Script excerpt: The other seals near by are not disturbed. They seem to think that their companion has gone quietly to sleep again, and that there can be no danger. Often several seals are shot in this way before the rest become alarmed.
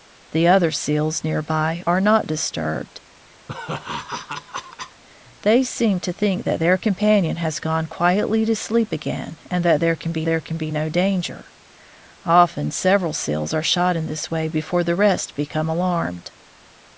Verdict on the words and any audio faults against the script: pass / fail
fail